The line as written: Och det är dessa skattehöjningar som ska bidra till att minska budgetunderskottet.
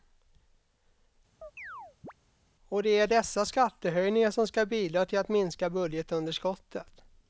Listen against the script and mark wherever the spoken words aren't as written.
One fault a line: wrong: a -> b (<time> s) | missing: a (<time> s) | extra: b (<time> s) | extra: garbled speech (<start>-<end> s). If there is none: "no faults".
no faults